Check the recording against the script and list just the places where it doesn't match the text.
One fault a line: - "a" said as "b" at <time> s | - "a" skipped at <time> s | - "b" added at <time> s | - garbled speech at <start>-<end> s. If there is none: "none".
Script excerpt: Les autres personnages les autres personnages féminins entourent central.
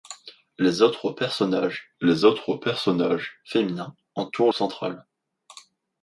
none